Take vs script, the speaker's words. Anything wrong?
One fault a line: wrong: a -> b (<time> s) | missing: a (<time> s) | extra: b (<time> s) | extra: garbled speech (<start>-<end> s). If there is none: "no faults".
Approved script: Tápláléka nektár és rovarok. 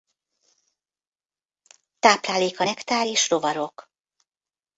no faults